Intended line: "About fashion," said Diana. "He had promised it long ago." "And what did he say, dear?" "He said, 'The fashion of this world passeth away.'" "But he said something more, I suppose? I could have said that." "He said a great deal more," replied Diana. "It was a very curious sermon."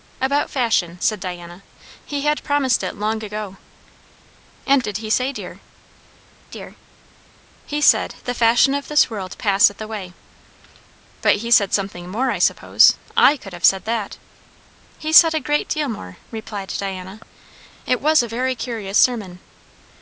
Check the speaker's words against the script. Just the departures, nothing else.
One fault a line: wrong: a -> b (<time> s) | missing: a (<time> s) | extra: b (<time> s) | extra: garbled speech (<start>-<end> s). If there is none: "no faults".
missing: what (4.8 s)
extra: dear (6.5 s)